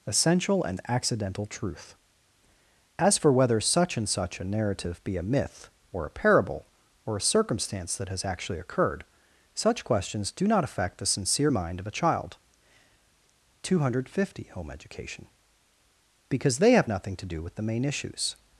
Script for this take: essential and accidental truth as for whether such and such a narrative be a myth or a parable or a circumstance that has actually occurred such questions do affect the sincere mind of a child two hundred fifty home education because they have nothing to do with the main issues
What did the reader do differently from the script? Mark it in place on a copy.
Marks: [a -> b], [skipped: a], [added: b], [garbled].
essential and accidental truth as for whether such and such a narrative be a myth or a parable or a circumstance that has actually occurred such questions do [added: not] affect the sincere mind of a child two hundred fifty home education because they have nothing to do with the main issues